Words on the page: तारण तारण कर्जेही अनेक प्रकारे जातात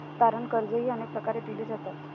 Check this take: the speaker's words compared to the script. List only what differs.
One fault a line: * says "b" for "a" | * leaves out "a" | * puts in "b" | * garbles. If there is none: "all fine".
* leaves out "तारण"
* puts in "दिली"